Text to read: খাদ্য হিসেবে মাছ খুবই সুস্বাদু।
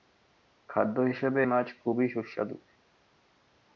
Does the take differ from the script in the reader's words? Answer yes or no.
no